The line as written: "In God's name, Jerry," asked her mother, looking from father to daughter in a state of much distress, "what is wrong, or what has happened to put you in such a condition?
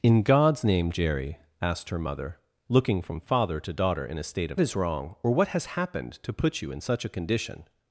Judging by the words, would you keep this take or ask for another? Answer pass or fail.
fail